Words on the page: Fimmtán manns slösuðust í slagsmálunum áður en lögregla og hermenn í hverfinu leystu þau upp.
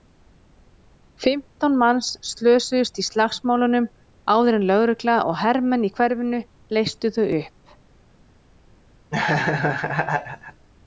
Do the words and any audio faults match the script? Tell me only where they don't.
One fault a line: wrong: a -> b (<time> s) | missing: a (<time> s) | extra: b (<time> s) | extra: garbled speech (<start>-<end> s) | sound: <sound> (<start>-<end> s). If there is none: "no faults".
sound: laugh (9.1-10.7 s)